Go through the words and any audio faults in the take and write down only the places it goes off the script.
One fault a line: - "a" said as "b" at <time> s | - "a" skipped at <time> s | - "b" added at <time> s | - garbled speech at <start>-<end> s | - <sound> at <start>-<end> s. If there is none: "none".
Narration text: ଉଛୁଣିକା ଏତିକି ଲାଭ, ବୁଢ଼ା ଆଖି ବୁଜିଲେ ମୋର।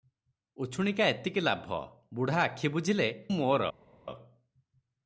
none